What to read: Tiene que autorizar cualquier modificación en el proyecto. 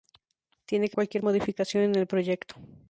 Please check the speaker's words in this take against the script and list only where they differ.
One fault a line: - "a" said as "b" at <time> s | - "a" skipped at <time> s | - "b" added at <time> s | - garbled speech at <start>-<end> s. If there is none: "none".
- "autorizar" skipped at 1.0 s